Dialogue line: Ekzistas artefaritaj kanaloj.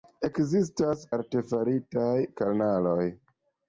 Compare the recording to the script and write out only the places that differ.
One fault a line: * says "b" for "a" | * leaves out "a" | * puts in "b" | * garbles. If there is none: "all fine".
all fine